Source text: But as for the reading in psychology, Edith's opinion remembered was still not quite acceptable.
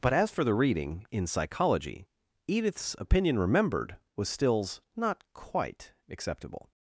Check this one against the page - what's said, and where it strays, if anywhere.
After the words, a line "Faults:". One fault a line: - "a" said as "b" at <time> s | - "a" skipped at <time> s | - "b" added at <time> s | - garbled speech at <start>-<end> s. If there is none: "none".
But as for the reading in psychology, Edith's opinion remembered was stills not quite acceptable.
Faults:
- "still" said as "stills" at 4.3 s